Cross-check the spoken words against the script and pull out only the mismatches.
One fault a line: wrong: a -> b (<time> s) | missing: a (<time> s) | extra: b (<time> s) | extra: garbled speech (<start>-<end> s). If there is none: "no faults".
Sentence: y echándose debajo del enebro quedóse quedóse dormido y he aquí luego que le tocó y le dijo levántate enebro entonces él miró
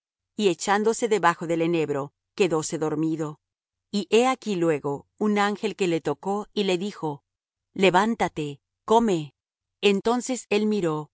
missing: quedóse (2.8 s)
extra: un ángel (5.2 s)
wrong: enebro -> come (8.8 s)